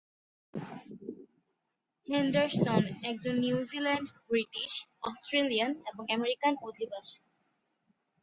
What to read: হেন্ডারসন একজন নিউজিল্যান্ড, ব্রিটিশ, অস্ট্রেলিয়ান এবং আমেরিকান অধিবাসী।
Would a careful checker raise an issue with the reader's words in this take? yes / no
no